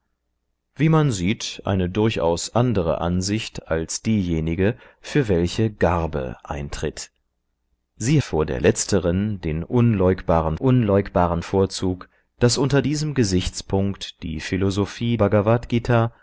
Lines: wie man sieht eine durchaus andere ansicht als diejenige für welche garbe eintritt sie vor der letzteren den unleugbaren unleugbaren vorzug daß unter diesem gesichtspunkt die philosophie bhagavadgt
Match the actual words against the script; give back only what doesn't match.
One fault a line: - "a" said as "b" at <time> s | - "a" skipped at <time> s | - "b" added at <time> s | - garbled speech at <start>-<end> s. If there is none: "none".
none